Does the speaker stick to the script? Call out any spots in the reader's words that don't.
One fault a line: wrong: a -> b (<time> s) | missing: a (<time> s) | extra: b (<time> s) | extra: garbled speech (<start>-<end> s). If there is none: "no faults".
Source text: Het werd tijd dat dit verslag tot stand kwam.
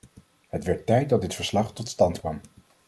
no faults